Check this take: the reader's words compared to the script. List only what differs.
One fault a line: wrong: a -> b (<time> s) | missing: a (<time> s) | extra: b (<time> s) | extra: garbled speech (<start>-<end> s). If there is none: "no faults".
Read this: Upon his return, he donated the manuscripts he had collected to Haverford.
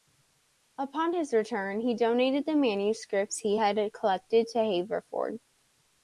no faults